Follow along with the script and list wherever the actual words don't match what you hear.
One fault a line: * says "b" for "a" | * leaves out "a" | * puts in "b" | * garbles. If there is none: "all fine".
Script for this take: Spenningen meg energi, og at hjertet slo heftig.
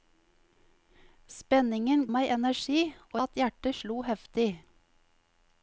all fine